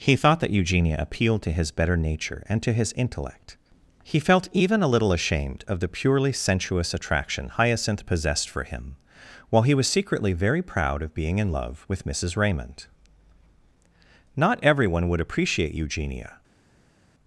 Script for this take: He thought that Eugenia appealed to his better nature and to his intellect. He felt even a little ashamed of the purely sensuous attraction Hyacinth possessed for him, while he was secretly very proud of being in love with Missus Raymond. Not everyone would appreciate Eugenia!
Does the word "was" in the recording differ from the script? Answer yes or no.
no